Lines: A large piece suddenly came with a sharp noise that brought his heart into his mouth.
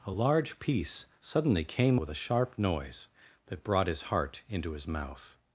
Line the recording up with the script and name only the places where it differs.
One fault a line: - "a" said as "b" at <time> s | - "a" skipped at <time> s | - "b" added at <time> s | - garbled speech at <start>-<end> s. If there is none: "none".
none